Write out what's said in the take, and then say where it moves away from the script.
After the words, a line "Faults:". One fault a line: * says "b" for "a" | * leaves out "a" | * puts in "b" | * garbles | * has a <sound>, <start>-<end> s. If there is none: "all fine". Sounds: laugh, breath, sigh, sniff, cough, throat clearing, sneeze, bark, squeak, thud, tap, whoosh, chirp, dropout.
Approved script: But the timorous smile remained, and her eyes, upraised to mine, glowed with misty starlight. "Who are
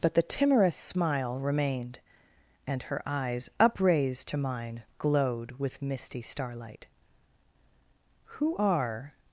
But the timorous smile remained, and her eyes, upraised to mine, glowed with misty starlight. "Who are
Faults:
all fine